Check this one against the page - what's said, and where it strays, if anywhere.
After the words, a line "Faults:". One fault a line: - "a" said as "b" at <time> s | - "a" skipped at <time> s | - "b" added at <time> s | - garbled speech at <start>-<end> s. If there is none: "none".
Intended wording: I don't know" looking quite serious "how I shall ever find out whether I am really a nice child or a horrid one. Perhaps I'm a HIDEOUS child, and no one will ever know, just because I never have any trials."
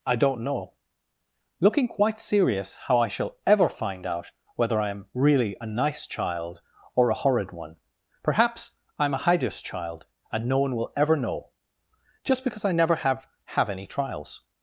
I don't know" looking quite serious "how I shall ever find out whether I am really a nice child or a horrid one. Perhaps I'm a HIDEOUS child, and no one will ever know, just because I never have have any trials."
Faults:
- "have" added at 13.6 s